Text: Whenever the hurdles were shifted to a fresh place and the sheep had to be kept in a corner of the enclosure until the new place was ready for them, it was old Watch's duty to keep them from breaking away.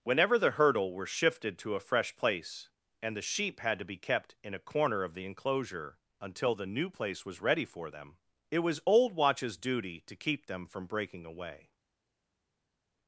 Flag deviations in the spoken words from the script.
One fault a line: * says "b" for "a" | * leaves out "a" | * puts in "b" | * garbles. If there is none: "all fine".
* says "hurdle" for "hurdles"